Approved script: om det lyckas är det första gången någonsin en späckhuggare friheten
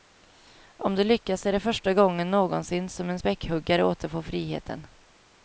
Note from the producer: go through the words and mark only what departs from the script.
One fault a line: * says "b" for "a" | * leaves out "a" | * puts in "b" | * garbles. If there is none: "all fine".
* puts in "som"
* puts in "återfår"